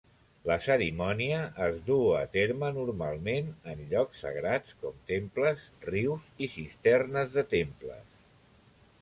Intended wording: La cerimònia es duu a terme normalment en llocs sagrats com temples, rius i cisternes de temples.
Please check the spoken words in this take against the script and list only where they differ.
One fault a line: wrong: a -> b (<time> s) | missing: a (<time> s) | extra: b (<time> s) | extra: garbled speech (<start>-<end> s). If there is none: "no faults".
no faults